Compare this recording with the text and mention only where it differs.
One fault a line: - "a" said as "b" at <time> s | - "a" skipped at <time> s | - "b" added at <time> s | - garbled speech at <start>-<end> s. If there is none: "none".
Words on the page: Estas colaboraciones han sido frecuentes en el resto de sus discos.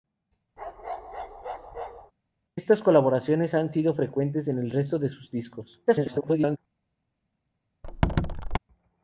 - garbled speech at 5.9-6.6 s